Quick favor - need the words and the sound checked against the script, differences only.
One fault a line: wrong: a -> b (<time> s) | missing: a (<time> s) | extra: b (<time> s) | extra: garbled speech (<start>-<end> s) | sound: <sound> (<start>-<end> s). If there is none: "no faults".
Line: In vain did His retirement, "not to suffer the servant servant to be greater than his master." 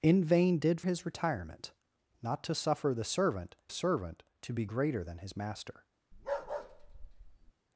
sound: bark (6.1-7.5 s)